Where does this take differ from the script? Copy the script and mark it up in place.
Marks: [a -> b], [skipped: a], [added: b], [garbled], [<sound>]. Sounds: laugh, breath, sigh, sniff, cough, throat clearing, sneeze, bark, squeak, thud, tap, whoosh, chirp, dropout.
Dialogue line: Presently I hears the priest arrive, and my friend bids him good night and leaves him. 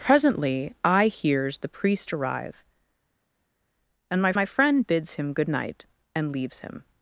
Presently I hears the priest arrive, and my [added: my] friend bids him good night and leaves him.